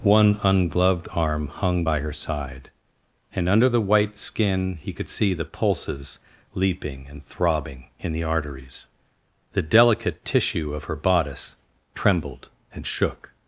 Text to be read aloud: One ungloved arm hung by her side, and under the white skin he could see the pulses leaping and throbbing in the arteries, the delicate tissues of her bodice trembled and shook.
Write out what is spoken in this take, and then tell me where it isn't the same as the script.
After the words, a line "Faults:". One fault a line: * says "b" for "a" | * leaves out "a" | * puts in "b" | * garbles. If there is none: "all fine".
One ungloved arm hung by her side, and under the white skin he could see the pulses leaping and throbbing in the arteries, the delicate tissue of her bodice trembled and shook.
Faults:
* says "tissue" for "tissues"